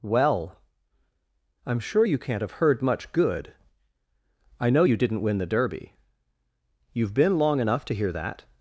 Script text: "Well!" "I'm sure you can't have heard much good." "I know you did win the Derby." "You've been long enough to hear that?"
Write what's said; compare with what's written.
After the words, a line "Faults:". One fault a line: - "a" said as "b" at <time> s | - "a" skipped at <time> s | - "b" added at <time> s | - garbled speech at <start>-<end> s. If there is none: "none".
"Well!" "I'm sure you can't have heard much good." "I know you didn't win the Derby." "You've been long enough to hear that?"
Faults:
- "did" said as "didn't" at 4.9 s